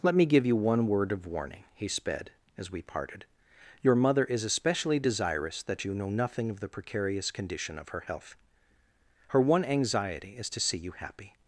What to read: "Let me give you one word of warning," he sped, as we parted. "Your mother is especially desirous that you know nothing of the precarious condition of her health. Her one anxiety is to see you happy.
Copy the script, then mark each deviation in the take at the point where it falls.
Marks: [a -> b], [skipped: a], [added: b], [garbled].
"Let me give you one word of warning," he sped, as we parted. "Your mother is especially desirous that you know nothing of the precarious condition of her health. Her one anxiety is to see you happy.